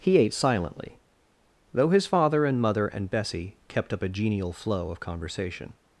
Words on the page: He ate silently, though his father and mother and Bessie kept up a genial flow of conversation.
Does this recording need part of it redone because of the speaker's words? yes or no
no